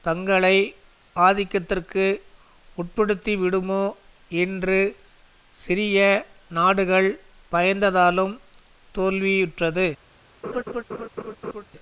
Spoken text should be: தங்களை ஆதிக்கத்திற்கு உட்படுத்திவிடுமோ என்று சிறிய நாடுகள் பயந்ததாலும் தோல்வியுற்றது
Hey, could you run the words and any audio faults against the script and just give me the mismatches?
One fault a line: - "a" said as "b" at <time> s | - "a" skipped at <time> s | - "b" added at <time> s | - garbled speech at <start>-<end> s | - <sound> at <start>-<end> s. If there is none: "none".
- laugh at 10.4-11.6 s